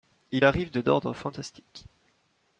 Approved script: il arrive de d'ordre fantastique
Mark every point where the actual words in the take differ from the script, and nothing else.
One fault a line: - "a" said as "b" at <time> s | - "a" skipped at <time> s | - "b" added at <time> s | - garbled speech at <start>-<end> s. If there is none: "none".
none